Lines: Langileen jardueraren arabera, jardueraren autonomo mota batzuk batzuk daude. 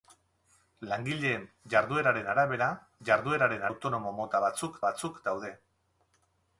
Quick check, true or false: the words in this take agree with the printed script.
true